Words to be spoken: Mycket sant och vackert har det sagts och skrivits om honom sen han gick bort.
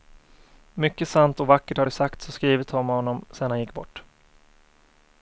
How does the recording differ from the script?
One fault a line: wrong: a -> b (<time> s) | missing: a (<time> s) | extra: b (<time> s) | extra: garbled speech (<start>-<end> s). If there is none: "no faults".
no faults